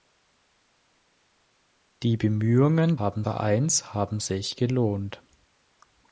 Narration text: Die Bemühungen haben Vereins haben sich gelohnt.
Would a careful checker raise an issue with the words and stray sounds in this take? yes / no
no